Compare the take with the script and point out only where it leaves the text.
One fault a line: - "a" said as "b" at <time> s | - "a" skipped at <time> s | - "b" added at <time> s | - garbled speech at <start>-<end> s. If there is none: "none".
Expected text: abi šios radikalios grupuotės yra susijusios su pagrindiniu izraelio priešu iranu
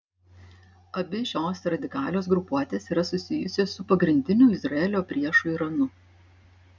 none